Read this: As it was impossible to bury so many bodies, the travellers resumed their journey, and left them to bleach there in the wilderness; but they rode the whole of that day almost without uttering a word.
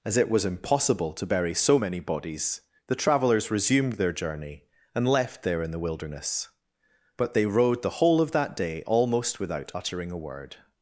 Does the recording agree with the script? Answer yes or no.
no